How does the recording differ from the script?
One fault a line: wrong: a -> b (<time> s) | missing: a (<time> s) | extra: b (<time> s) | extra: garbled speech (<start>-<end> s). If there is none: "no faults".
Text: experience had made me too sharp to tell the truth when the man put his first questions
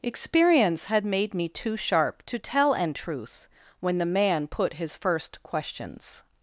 wrong: the -> an (2.7 s)